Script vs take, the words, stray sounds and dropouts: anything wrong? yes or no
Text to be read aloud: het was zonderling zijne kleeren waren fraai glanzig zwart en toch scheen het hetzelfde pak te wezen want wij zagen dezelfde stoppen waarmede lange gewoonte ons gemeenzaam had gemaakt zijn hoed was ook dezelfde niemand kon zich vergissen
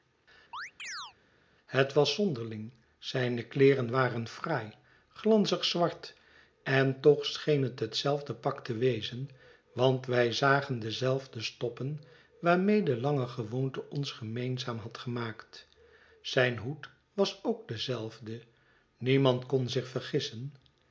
yes